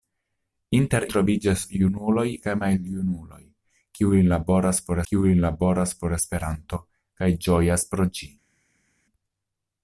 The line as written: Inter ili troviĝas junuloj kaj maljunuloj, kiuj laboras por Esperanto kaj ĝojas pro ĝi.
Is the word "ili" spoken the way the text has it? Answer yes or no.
no